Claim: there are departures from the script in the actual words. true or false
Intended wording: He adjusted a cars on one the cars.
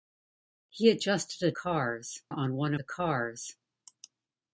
false